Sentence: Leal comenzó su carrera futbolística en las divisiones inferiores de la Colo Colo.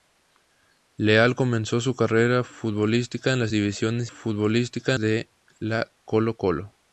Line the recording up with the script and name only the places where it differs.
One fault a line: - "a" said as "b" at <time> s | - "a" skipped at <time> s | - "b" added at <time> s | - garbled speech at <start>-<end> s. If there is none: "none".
- "inferiores" said as "futbolística" at 4.0 s